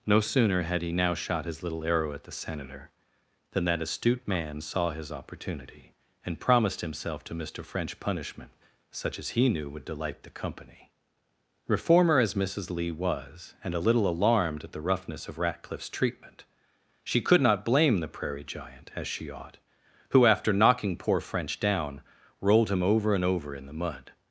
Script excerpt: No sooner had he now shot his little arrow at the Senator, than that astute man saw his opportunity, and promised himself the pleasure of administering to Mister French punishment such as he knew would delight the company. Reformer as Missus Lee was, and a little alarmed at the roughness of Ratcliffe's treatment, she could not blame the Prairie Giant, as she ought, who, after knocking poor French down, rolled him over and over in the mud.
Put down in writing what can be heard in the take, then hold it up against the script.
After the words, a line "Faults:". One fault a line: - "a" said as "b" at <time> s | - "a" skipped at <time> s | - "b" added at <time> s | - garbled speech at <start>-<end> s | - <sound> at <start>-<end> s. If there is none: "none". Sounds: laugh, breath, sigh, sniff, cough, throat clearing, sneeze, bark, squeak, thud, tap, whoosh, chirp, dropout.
No sooner had he now shot his little arrow at the Senator, than that astute man saw his opportunity, and promised himself to Mister French punishment such as he knew would delight the company. Reformer as Missus Lee was, and a little alarmed at the roughness of Ratcliffe's treatment, she could not blame the Prairie Giant, as she ought, who, after knocking poor French down, rolled him over and over in the mud.
Faults:
- "the pleasure of administering" skipped at 7.2 s